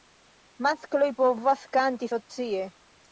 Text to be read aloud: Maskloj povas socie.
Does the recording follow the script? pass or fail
fail